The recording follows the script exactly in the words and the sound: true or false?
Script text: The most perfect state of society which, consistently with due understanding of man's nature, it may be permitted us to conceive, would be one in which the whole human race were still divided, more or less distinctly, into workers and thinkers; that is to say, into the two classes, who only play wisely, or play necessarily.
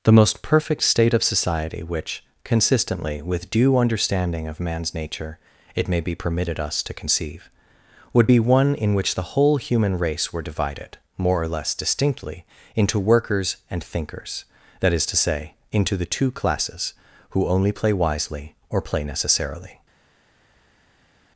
false